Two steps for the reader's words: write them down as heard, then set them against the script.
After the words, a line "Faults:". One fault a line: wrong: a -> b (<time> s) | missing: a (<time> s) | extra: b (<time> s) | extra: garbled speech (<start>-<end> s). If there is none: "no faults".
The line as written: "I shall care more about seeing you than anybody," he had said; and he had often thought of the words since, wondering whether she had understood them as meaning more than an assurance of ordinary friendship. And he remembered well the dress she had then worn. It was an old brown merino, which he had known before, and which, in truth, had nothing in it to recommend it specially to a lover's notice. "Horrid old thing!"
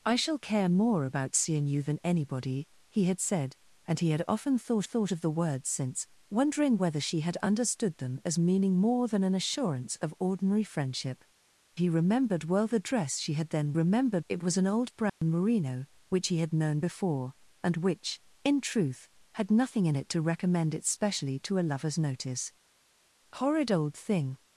"I shall care more about seeing you than anybody," he had said; and he had often thought thought of the words since, wondering whether she had understood them as meaning more than an assurance of ordinary friendship. He remembered well the dress she had then remembered. It was an old brown merino, which he had known before, and which, in truth, had nothing in it to recommend it specially to a lover's notice. "Horrid old thing!"
Faults:
extra: thought (4.8 s)
missing: And (11.2 s)
wrong: worn -> remembered (13.7 s)